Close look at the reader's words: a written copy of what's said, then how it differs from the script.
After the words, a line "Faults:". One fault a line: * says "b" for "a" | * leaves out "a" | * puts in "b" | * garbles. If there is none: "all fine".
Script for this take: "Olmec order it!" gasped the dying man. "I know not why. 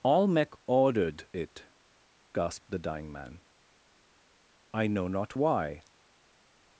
"Olmec ordered it!" gasped the dying man. "I know not why.
Faults:
* says "ordered" for "order"